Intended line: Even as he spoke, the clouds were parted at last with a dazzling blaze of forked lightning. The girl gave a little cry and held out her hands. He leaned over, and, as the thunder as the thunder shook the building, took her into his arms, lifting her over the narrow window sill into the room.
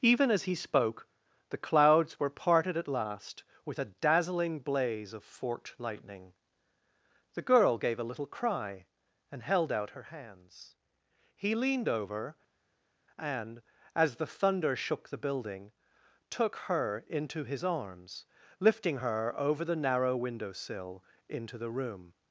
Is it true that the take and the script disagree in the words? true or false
true